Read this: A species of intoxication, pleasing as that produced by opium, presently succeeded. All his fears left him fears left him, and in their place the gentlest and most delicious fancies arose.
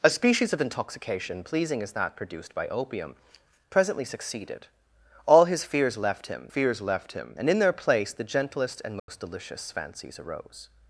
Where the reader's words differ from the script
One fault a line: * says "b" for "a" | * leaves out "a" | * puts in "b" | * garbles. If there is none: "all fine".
all fine